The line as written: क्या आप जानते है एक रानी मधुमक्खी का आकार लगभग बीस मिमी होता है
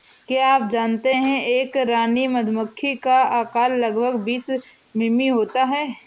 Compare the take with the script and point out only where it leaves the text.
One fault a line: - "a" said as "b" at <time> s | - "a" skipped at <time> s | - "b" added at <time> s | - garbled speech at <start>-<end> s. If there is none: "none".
none